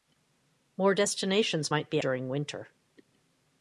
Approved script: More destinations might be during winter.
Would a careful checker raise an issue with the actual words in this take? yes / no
no